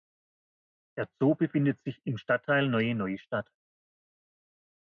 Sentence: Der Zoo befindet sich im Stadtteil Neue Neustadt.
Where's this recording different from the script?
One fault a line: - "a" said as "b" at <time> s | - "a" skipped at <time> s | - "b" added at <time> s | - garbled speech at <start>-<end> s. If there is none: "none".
none